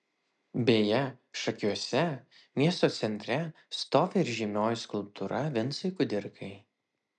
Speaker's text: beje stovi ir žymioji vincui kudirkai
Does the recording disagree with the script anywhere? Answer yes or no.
yes